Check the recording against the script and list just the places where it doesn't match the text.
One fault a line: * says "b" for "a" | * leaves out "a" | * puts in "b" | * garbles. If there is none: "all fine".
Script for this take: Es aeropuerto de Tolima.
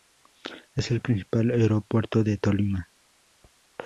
* puts in "el principal"